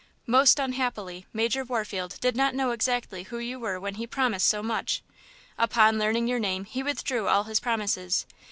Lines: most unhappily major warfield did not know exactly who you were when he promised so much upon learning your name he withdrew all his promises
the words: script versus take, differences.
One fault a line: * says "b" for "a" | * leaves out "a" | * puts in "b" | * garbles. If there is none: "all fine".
all fine